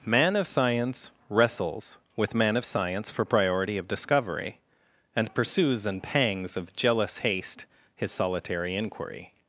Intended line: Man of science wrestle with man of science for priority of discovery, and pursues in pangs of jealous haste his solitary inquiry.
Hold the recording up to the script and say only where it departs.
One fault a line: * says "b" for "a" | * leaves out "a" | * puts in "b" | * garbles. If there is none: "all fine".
* says "wrestles" for "wrestle"